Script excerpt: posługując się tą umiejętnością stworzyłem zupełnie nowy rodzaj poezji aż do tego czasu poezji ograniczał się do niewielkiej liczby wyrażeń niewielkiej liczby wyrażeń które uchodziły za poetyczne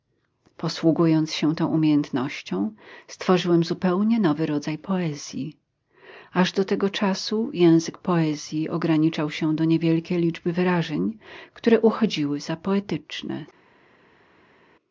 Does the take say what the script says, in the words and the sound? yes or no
no